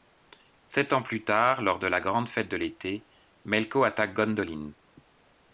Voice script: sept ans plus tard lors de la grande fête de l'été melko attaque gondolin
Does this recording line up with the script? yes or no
yes